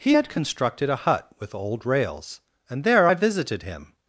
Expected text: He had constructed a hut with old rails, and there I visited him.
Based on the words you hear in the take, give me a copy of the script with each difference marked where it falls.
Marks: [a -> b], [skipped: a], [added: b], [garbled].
He had constructed a hut with old rails, and there I visited him.